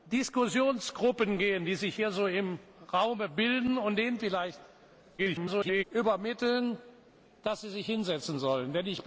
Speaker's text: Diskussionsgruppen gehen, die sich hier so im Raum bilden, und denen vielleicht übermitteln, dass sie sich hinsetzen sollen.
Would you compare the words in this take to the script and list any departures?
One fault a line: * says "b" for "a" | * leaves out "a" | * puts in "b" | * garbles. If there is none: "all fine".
* garbles